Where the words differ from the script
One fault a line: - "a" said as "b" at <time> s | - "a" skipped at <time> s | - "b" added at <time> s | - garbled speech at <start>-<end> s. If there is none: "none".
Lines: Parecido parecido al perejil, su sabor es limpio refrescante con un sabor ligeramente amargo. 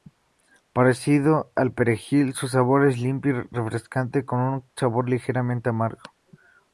- "parecido" skipped at 1.5 s
- "y" added at 3.4 s